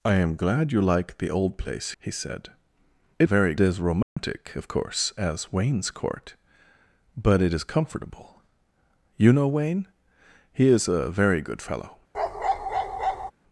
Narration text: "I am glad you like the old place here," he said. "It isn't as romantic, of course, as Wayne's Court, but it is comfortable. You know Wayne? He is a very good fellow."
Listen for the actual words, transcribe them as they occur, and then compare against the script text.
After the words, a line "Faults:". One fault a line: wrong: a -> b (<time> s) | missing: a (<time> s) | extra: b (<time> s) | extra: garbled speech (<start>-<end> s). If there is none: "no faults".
"I am glad you like the old place," he said. "It very as romantic, of course, as Wayne's Court, but it is comfortable. You know Wayne? He is a very good fellow."
Faults:
missing: here (1.9 s)
wrong: isn't -> very (3.2 s)